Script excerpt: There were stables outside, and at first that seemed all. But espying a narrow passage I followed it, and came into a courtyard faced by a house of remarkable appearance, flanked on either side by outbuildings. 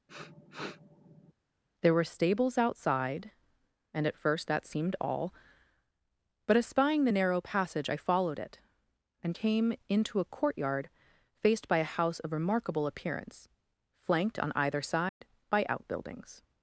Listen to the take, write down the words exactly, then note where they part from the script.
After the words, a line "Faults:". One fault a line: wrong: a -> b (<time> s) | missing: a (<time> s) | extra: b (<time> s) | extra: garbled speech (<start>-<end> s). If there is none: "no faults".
There were stables outside, and at first that seemed all. But espying the narrow passage I followed it, and came into a courtyard faced by a house of remarkable appearance, flanked on either side by outbuildings.
Faults:
wrong: a -> the (7.0 s)